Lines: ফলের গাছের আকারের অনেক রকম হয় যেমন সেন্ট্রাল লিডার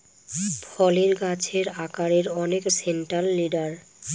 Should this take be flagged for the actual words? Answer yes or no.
yes